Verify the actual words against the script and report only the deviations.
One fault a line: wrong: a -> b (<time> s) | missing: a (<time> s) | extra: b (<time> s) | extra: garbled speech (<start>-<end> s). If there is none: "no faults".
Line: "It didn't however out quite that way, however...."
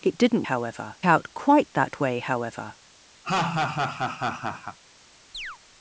no faults